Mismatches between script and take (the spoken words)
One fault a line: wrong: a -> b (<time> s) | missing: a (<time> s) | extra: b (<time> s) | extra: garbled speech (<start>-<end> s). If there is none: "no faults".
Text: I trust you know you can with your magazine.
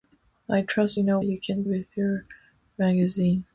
no faults